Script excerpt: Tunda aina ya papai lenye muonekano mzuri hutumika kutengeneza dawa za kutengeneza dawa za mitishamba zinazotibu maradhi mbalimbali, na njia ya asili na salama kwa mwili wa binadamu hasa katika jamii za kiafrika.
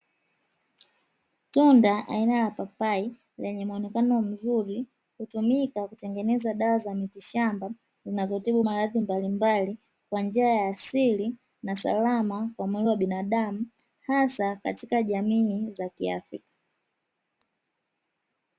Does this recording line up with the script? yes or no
no